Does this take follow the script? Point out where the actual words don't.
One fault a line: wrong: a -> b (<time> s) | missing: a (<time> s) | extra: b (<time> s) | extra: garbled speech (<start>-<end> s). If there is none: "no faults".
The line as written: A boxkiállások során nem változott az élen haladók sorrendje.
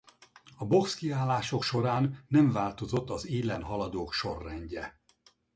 no faults